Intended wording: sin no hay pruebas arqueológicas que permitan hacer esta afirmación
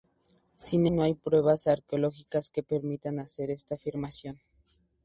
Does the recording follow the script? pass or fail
pass